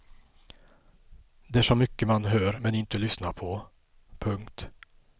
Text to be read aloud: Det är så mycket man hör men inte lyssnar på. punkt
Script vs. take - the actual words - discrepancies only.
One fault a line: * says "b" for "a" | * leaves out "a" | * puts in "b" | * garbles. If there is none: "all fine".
all fine